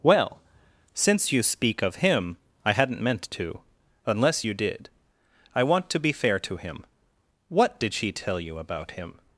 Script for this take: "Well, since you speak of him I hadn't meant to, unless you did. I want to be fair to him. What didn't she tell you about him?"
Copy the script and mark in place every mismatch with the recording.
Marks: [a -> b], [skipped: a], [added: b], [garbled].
"Well, since you speak of him I hadn't meant to, unless you did. I want to be fair to him. What [didn't -> did] she tell you about him?"